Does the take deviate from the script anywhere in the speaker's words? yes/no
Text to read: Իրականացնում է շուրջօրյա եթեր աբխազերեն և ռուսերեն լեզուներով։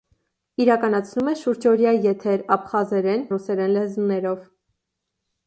yes